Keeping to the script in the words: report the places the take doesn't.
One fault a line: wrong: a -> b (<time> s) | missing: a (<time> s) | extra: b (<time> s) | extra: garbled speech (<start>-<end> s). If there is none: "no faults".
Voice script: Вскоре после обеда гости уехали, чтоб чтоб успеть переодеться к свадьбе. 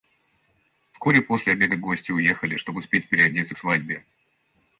missing: чтоб (2.8 s)